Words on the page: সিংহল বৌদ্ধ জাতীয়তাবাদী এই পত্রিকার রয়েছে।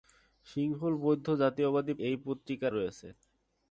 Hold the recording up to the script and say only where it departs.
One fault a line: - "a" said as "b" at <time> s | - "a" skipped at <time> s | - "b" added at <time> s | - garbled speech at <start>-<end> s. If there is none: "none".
none